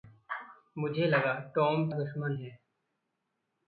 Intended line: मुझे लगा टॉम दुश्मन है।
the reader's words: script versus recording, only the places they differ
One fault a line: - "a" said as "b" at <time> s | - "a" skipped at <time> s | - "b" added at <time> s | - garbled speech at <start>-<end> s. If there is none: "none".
none